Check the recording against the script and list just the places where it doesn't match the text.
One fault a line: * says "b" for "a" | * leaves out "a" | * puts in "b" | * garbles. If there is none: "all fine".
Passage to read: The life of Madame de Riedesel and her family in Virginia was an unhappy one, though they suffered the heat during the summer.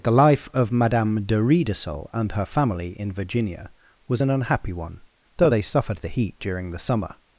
all fine